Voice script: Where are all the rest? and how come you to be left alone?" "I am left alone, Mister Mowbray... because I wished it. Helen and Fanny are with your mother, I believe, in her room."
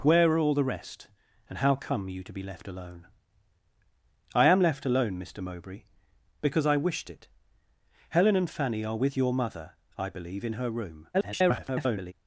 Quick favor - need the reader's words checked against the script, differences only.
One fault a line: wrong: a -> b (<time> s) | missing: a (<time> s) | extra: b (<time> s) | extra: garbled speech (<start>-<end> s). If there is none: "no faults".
extra: garbled speech (11.1-12.1 s)